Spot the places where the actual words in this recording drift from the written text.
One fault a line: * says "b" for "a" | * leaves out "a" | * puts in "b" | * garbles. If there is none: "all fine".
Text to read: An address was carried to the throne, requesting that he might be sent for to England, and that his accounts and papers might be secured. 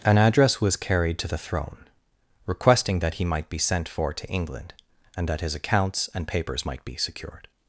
all fine